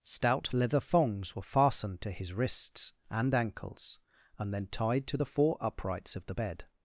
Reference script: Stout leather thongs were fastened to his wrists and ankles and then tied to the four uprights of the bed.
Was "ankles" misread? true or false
false